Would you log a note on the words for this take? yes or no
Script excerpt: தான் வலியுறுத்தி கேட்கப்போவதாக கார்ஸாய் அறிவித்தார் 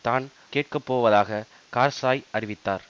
yes